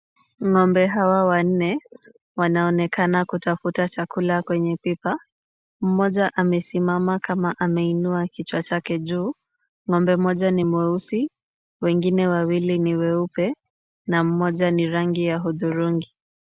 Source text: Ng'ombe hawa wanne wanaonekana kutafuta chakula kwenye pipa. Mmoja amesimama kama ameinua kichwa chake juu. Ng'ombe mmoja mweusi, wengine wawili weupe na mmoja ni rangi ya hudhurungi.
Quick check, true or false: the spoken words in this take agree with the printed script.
false